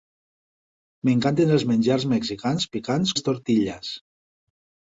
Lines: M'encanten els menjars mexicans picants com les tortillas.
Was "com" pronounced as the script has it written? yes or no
no